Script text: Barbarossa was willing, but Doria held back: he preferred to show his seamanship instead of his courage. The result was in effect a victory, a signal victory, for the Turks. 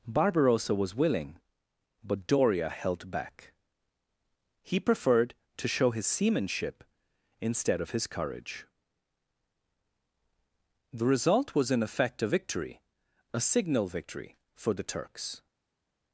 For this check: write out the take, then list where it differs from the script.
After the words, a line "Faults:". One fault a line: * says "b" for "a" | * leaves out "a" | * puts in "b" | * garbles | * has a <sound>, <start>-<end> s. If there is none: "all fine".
Barbarossa was willing, but Doria held back: he preferred to show his seamanship instead of his courage. The result was in effect a victory, a signal victory, for the Turks.
Faults:
all fine